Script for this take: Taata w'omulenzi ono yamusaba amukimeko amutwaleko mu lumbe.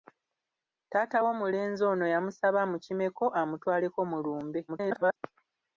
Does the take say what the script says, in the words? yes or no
no